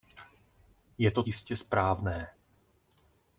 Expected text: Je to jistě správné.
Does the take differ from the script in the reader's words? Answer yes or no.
no